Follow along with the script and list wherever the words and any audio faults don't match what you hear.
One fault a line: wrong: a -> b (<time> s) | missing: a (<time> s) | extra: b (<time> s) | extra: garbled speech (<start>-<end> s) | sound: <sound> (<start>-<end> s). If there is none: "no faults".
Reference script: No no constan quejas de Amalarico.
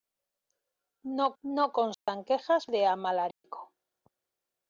sound: dropout (1.9-2.1 s)
sound: dropout (3.3-3.4 s)